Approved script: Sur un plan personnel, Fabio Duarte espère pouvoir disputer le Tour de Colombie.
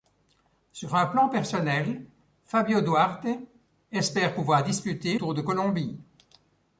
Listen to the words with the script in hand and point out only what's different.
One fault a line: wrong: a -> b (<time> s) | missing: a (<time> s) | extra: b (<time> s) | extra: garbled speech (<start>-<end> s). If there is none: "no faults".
missing: le (5.2 s)